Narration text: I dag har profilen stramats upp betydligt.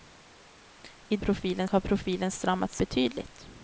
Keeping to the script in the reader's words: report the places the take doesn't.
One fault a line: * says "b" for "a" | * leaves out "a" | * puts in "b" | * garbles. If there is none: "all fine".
* says "profilen" for "dag"
* leaves out "upp"